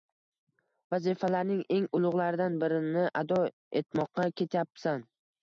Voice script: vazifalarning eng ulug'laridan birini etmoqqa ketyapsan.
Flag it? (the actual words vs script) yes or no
yes